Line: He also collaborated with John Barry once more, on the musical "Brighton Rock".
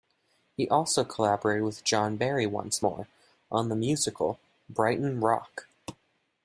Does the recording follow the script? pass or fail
pass